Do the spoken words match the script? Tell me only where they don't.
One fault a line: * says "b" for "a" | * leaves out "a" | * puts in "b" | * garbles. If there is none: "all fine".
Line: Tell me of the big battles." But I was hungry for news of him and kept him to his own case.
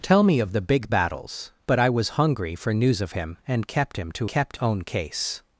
* says "kept" for "his"